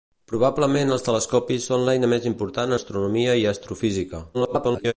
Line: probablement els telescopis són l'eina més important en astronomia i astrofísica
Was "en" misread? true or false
true